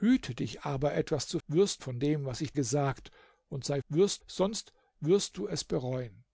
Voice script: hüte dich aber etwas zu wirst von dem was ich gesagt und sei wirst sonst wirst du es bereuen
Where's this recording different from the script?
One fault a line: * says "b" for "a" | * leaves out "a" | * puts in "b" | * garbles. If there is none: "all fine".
all fine